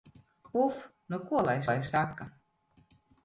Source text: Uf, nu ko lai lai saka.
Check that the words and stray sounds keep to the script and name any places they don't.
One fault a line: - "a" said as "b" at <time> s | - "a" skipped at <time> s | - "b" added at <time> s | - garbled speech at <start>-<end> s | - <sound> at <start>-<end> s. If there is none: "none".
none